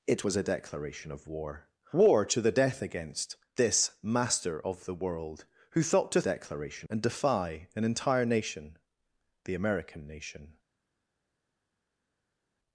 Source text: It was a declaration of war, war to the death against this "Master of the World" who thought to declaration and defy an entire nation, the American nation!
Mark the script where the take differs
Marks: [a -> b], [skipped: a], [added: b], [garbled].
It was a declaration of war, war to the death against this "Master of the World" who thought to declaration and defy an entire nation, the American nation!